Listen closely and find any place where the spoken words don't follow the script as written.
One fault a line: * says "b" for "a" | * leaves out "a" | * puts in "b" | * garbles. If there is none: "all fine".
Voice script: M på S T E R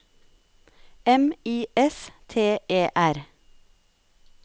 * says "I" for "på"